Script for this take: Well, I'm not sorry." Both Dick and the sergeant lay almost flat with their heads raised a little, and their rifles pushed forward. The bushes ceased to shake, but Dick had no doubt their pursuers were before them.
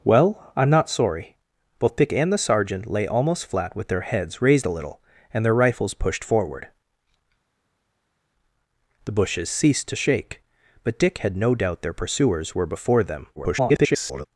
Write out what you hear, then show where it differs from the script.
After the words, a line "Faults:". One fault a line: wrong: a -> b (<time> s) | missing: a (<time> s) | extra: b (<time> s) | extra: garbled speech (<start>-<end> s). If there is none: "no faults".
Well, I'm not sorry." Both Dick and the sergeant lay almost flat with their heads raised a little, and their rifles pushed forward. The bushes ceased to shake, but Dick had no doubt their pursuers were before them. [garbled]
Faults:
extra: garbled speech (13.4-14.3 s)